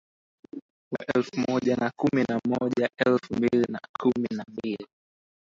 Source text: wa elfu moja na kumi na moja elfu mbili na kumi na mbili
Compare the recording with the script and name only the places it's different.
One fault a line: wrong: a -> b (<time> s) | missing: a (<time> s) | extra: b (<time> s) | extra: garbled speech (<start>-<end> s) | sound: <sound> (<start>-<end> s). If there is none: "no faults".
no faults